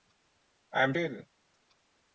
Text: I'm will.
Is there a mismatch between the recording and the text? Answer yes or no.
no